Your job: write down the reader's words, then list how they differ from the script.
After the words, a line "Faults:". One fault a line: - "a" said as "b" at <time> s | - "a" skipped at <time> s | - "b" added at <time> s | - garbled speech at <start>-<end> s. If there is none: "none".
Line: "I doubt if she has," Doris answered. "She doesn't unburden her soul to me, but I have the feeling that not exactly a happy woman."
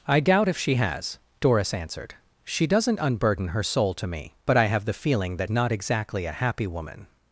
"I doubt if she has," Doris answered. "She doesn't unburden her soul to me, but I have the feeling that not exactly a happy woman."
Faults:
none